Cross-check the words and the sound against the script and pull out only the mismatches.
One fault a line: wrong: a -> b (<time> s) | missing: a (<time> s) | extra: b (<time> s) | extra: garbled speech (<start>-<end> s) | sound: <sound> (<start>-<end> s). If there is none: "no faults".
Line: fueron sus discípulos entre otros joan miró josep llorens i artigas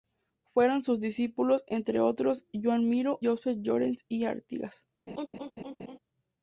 sound: laugh (5.1-6.0 s)